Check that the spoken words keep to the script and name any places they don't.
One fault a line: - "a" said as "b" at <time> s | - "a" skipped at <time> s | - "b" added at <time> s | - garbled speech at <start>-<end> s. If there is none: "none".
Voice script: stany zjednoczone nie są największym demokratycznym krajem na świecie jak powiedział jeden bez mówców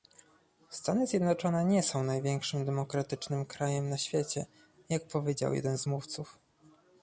- "bez" said as "z" at 5.8 s